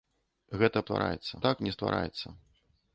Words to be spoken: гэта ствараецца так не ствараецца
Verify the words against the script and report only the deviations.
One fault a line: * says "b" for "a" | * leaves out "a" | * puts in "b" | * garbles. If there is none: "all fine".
all fine